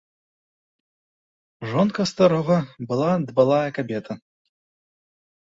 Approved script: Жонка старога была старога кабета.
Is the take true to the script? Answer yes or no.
no